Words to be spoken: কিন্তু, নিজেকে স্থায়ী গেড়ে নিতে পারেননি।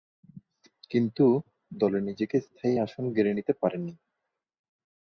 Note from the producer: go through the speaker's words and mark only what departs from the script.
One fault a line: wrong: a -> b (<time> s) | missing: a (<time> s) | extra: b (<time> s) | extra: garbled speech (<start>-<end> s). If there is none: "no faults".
extra: দলে (1.7 s)
extra: আসন (2.8 s)